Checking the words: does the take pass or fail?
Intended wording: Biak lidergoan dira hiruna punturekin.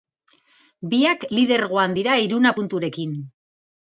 pass